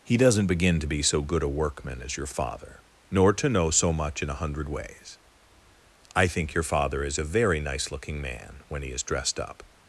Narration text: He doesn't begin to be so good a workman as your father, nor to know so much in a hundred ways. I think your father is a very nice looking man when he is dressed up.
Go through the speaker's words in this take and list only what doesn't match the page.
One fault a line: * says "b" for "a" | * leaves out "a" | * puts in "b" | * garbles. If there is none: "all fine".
all fine